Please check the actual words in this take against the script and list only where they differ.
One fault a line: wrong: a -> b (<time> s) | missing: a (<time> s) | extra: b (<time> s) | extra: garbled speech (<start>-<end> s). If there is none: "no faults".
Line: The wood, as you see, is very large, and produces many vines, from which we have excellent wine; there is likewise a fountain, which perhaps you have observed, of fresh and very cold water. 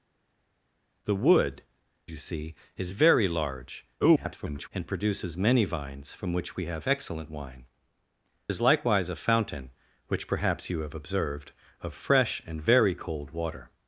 missing: as (1.6 s)
extra: garbled speech (4.0-4.7 s)
missing: there (7.7 s)